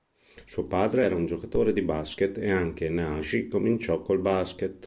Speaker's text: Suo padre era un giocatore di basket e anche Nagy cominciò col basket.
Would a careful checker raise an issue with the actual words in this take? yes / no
no